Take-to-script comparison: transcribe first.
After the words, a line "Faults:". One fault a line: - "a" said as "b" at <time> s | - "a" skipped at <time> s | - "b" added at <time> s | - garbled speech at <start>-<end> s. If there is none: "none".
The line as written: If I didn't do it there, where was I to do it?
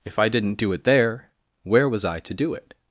If I didn't do it there, where was I to do it?
Faults:
none